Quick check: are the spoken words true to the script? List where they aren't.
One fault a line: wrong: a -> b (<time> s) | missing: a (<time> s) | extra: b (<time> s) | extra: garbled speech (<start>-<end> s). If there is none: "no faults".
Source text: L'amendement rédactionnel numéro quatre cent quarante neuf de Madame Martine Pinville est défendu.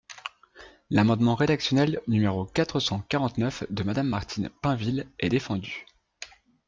no faults